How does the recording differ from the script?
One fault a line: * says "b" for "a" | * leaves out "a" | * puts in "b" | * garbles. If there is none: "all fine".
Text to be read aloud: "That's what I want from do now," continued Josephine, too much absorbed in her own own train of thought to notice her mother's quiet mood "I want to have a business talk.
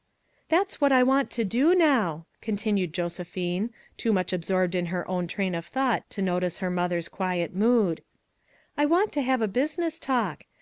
* says "to" for "from"
* leaves out "own"